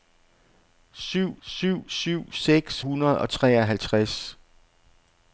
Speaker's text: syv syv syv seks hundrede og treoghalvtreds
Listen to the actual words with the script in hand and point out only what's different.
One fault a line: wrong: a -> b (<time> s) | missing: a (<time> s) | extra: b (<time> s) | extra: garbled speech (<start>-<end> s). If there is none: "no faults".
no faults